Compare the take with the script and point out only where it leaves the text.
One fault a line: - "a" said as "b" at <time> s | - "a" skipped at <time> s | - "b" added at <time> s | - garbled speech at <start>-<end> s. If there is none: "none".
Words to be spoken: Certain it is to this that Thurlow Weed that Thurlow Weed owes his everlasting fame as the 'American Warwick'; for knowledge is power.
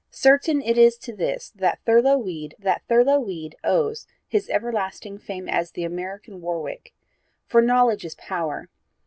none